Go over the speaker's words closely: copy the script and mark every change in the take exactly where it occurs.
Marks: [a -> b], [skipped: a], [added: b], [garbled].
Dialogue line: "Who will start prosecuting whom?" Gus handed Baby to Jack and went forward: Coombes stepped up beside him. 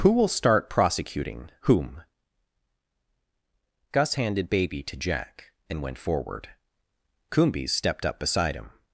"Who will start prosecuting whom?" Gus handed Baby to Jack and went forward: Coombes stepped up beside him.